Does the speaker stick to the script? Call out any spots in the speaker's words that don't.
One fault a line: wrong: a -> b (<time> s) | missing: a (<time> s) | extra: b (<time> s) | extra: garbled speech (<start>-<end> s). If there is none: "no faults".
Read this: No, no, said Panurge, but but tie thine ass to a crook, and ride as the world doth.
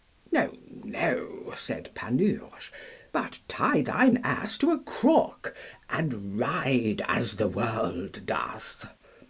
missing: but (3.4 s)